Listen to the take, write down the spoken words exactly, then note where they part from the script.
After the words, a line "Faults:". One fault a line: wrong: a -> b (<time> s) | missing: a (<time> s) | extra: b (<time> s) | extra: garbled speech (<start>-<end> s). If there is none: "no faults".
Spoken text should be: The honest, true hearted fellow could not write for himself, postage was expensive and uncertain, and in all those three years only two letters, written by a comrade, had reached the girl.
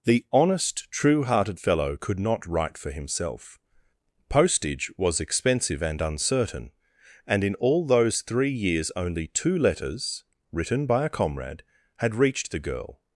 The honest, true hearted fellow could not write for himself, postage was expensive and uncertain, and in all those three years only two letters, written by a comrade, had reached the girl.
Faults:
no faults